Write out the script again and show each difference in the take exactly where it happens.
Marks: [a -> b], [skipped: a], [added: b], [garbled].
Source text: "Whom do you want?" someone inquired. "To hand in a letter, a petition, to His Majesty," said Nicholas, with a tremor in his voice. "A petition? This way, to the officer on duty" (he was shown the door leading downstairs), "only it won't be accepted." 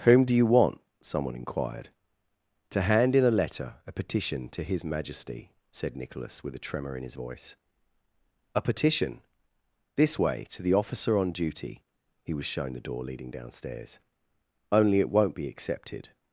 "Whom do you want?" someone inquired. "To hand in a letter, a petition, to His Majesty," said Nicholas, with a tremor in his voice. "A petition? This way, to the officer on duty" (he was shown the door leading downstairs), "only it won't be accepted."